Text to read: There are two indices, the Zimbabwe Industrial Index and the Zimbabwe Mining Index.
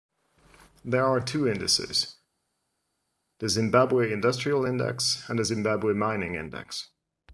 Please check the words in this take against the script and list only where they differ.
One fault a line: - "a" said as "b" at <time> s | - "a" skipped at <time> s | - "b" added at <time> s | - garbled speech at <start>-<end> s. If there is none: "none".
none